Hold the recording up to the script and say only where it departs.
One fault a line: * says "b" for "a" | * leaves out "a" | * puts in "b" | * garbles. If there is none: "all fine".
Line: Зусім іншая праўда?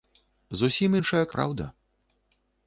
all fine